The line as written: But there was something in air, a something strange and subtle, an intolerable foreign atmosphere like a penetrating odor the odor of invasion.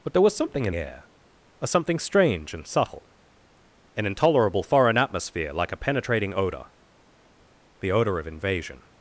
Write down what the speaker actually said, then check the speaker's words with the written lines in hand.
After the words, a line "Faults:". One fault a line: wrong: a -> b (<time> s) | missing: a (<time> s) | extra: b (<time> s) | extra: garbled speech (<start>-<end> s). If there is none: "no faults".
But there was something in air, a something strange and subtle, an intolerable foreign atmosphere like a penetrating odor the odor of invasion.
Faults:
no faults